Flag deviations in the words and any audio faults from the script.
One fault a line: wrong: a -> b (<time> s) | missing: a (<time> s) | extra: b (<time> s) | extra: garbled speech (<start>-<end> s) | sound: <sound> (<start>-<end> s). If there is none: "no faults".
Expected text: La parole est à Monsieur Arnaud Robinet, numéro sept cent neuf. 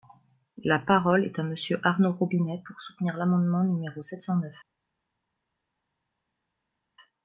extra: pour soutenir l'amendement (2.6 s)